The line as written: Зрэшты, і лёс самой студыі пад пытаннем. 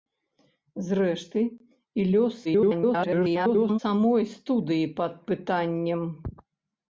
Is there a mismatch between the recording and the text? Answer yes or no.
yes